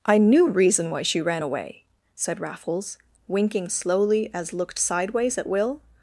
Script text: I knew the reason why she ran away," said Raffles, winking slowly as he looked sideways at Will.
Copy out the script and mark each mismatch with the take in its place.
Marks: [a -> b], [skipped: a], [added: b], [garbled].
I knew [skipped: the] reason why she ran away," said Raffles, winking slowly as [skipped: he] looked sideways at Will.